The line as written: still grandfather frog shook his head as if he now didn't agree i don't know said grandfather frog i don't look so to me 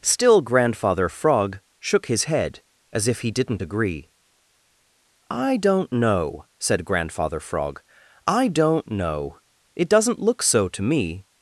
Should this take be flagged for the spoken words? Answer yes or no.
yes